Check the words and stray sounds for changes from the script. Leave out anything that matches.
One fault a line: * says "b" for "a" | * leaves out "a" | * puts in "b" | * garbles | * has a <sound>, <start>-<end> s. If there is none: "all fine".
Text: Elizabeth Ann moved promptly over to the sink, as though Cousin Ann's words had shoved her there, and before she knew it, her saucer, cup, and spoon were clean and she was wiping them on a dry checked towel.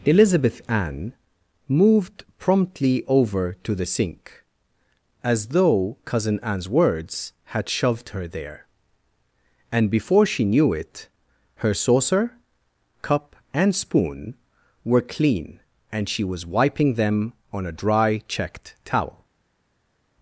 all fine